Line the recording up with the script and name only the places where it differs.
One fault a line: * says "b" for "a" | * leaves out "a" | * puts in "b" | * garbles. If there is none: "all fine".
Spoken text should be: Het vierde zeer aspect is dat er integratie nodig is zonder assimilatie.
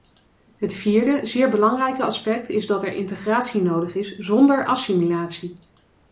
* puts in "belangrijke"